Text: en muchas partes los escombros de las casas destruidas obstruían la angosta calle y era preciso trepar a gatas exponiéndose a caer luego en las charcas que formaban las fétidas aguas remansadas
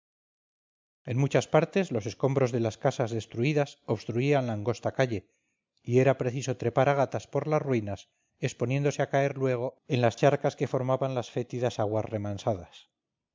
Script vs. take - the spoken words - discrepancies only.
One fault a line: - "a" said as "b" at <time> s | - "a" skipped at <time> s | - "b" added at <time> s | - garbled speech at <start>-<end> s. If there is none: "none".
- "por las ruinas" added at 7.3 s